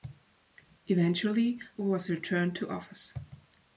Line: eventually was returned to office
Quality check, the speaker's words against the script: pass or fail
pass